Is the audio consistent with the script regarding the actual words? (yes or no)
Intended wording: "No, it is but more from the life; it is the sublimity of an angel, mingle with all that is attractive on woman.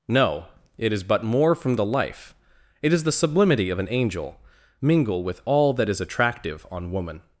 yes